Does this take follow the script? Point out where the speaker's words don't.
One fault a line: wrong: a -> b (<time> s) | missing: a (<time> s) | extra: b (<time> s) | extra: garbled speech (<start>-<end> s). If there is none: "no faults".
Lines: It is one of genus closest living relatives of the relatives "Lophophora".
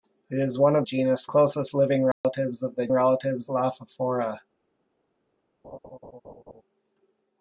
no faults